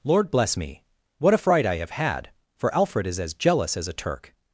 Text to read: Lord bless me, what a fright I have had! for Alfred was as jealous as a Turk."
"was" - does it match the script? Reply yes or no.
no